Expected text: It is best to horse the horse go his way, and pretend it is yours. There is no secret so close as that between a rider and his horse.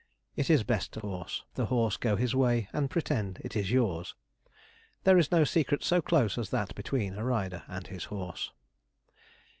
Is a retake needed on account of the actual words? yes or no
no